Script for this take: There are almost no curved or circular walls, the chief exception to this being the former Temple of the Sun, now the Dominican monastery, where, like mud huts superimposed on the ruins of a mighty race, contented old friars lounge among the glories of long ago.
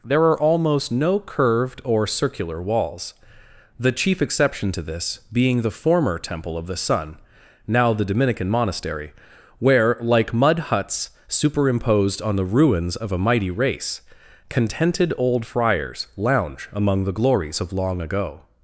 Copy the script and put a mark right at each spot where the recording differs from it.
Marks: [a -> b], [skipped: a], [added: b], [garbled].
There are almost no curved or circular walls, the chief exception to this being the former Temple of the Sun, now the Dominican monastery, where, like mud huts superimposed on the ruins of a mighty race, contented old friars lounge among the glories of long ago.